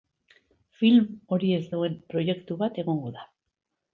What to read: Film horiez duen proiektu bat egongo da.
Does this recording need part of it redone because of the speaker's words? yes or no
no